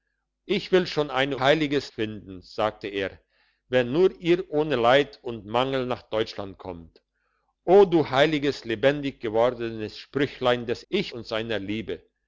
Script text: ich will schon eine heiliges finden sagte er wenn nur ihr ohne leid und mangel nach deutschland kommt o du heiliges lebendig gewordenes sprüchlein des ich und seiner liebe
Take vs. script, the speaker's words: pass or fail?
pass